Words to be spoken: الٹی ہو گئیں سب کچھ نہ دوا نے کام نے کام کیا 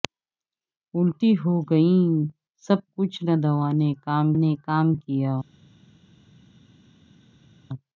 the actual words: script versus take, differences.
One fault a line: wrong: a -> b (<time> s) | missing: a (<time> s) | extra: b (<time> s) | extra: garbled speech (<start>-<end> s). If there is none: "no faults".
no faults